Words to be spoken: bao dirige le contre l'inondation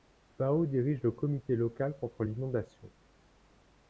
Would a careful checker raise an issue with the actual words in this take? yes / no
yes